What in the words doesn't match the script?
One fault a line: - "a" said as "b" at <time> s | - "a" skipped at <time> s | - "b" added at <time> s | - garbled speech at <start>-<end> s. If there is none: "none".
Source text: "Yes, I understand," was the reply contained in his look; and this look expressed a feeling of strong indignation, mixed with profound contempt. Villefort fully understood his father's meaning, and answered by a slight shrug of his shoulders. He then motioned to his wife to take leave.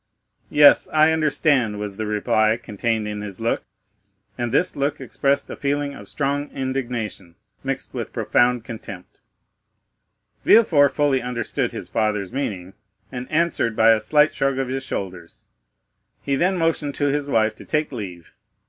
none